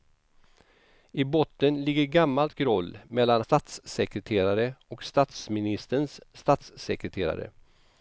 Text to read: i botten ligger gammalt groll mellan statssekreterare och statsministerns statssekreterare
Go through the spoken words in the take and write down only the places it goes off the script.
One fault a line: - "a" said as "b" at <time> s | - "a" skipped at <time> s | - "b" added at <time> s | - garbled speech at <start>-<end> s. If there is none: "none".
none